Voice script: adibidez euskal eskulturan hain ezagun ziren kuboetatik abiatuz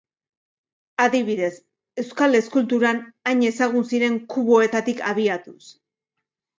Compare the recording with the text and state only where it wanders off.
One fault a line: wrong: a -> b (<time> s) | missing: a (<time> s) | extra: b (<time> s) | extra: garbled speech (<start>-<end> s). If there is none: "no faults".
no faults